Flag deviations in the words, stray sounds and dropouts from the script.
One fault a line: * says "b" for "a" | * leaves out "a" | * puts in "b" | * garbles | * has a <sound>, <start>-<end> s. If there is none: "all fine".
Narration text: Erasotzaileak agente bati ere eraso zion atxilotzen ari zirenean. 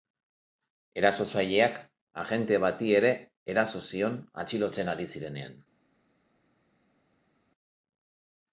all fine